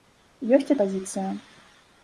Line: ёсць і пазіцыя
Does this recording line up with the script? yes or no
yes